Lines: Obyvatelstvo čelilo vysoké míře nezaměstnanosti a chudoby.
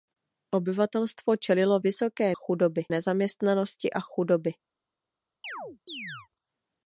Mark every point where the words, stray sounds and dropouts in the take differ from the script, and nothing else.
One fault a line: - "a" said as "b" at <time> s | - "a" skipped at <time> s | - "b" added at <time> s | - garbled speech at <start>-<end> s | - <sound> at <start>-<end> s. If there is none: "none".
- "míře" said as "chudoby" at 2.3 s
- chirp at 5.4-6.3 s